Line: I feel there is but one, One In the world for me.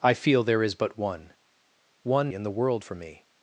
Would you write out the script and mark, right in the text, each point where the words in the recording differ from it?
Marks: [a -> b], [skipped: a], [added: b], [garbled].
I feel there is but one, One In the world for me.